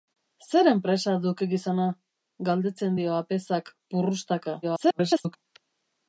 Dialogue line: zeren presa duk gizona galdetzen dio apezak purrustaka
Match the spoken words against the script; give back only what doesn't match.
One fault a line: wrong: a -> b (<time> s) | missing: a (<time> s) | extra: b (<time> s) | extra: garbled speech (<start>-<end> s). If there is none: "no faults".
extra: garbled speech (4.6-5.4 s)